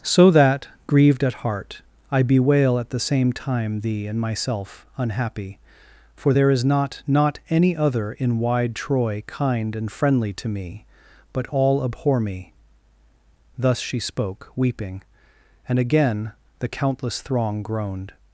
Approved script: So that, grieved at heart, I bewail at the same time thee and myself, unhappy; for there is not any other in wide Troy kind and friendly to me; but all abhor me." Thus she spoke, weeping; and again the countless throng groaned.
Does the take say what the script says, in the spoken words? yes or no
no